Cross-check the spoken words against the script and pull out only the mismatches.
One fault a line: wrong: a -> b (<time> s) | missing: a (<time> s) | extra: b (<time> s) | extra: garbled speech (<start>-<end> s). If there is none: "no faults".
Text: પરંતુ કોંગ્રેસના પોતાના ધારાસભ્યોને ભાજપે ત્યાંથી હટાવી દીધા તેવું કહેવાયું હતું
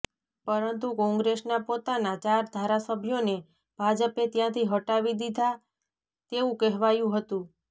extra: ચાર (2.2 s)